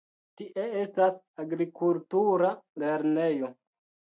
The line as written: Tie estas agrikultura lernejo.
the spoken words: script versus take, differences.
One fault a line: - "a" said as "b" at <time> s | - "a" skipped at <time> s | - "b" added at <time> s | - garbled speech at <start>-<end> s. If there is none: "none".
none